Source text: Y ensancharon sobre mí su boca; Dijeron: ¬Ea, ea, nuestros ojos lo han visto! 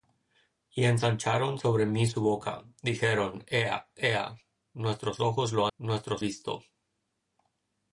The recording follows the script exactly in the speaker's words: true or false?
false